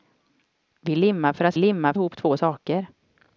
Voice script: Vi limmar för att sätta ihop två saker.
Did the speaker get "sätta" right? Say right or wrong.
wrong